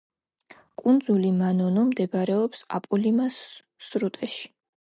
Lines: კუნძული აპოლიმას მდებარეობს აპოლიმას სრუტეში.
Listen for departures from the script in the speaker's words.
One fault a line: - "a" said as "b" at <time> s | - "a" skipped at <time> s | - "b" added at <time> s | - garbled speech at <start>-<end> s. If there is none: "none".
- "აპოლიმას" said as "მანონო" at 1.4 s